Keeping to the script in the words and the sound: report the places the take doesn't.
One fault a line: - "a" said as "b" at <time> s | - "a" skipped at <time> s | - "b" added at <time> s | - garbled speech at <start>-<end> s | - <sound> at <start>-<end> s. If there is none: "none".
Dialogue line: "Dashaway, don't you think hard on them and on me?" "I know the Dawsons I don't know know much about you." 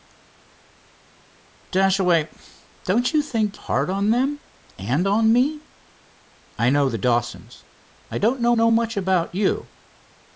none